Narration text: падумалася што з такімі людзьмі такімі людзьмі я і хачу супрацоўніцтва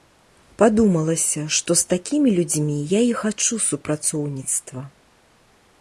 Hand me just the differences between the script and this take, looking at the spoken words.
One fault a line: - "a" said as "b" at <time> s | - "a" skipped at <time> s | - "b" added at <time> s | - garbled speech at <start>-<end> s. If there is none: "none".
- "такімі людзьмі" skipped at 2.8 s